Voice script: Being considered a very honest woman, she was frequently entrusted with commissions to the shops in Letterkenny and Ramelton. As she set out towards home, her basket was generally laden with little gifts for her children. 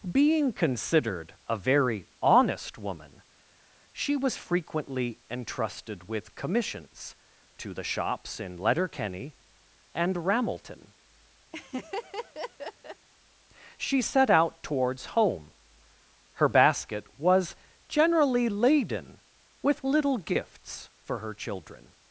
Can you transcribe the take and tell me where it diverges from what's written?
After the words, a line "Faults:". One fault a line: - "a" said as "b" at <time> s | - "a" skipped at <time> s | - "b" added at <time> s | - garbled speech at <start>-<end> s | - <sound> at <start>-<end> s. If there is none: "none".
Being considered a very honest woman, she was frequently entrusted with commissions to the shops in Letterkenny and Ramelton. she set out towards home, her basket was generally laden with little gifts for her children.
Faults:
- "As" skipped at 10.9 s
- laugh at 11.5-13.1 s